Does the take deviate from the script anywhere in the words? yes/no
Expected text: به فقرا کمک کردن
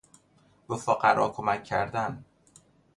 no